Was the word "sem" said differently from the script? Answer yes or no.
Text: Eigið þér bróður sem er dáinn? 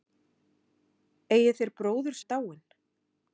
yes